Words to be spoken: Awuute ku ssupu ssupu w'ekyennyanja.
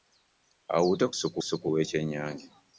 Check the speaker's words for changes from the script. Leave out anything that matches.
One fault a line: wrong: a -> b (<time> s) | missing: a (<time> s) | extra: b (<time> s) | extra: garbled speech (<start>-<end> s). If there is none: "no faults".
no faults